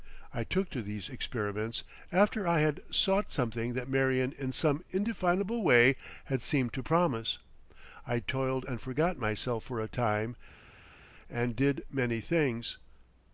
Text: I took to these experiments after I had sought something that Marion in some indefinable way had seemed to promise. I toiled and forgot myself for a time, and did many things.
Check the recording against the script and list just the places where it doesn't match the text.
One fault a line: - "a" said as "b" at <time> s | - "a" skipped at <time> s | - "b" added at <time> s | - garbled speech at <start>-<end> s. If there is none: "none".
none